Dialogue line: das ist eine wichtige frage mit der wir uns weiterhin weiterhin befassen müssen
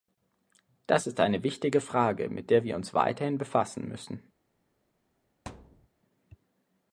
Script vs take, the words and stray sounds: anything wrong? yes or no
yes